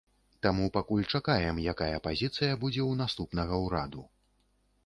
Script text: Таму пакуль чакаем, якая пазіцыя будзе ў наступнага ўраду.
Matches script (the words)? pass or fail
pass